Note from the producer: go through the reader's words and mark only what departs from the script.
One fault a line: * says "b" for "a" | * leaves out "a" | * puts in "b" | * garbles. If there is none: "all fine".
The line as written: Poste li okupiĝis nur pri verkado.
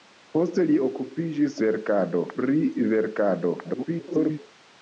* says "verkado" for "nur"
* garbles